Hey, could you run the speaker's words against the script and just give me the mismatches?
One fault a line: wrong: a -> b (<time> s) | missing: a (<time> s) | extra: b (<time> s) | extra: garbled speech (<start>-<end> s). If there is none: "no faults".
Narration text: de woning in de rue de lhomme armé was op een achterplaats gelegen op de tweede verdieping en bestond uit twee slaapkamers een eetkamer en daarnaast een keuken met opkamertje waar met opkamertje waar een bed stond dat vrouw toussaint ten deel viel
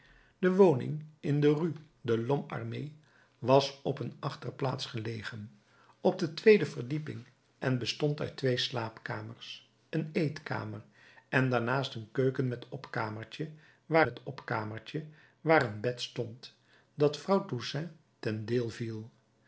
no faults